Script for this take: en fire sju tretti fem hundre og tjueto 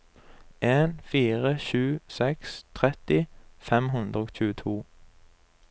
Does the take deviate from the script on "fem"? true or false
false